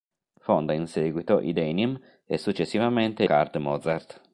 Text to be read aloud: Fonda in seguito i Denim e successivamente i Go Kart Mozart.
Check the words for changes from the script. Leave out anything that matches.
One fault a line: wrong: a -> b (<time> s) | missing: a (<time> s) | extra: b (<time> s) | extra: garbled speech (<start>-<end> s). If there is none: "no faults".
missing: i Go (3.2 s)